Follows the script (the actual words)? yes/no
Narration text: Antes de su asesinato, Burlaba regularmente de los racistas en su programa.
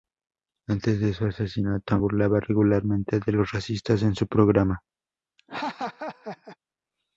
yes